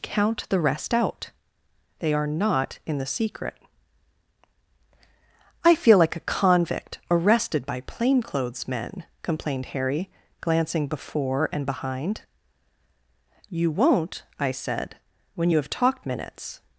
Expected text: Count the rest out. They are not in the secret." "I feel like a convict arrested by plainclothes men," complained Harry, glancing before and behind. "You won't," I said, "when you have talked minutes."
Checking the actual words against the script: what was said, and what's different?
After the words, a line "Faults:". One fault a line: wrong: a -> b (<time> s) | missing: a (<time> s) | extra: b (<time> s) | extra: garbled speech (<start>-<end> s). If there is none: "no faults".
Count the rest out. They are not in the secret." "I feel like a convict arrested by plainclothes men," complained Harry, glancing before and behind. "You won't," I said, "when you have talked minutes."
Faults:
no faults